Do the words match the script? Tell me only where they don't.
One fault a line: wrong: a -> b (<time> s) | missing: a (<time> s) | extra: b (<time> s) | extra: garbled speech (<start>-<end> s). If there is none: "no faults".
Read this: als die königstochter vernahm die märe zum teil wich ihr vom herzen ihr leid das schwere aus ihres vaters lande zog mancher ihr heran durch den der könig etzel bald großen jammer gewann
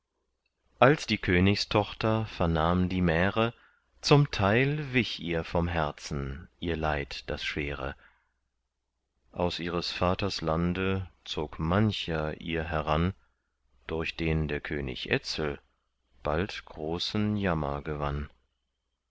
no faults